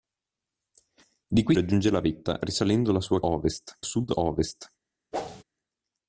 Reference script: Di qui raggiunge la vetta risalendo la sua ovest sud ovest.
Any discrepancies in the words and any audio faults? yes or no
yes